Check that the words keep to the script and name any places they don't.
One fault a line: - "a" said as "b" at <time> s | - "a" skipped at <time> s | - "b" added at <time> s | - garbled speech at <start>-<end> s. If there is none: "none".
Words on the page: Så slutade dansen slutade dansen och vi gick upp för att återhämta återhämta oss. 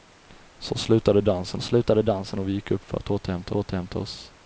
none